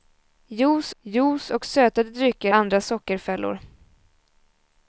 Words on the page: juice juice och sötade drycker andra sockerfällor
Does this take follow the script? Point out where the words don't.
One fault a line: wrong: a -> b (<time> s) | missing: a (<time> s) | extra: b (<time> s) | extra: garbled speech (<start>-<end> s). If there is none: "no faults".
no faults